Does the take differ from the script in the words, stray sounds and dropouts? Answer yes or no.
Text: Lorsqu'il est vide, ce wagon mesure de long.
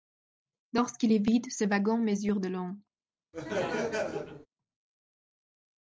yes